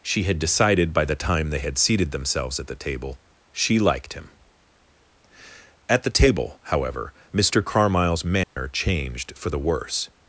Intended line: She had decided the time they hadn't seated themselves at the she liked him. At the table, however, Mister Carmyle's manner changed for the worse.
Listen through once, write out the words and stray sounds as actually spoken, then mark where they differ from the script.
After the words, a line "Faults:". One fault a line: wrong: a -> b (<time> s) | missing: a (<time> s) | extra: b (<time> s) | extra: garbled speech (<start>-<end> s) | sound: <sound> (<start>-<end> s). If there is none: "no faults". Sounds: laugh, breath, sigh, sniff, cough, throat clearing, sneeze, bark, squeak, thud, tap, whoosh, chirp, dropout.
She had decided by the time they had seated themselves at the table she liked him. At the table, however, Mister Carmyle's manner changed for the worse.
Faults:
extra: by (0.9 s)
wrong: hadn't -> had (1.6 s)
extra: table (2.8 s)
sound: dropout (8.4-8.6 s)